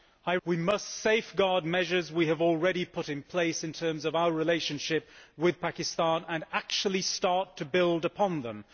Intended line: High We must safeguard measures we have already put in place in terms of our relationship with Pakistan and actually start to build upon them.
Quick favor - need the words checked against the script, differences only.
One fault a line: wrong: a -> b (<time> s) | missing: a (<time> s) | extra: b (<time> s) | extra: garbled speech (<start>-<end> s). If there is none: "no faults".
no faults